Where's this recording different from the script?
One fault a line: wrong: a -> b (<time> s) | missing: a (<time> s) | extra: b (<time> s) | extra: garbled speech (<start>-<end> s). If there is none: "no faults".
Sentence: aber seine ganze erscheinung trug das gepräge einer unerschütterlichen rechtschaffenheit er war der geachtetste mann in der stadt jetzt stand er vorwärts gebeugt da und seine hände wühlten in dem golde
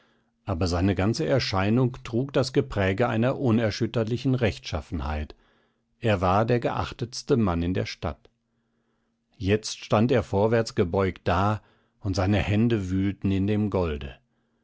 no faults